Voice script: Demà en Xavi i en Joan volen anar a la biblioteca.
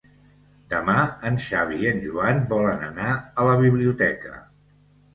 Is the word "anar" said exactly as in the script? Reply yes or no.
yes